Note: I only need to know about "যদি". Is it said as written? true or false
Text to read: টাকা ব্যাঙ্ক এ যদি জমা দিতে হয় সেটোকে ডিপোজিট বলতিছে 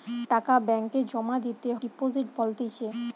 false